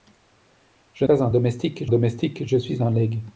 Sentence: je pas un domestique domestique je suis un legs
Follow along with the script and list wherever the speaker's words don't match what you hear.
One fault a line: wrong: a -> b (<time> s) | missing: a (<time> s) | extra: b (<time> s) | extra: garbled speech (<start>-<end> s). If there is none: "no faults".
no faults